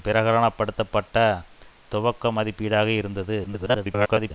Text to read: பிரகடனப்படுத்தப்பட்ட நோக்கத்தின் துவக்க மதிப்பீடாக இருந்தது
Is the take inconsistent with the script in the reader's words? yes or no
yes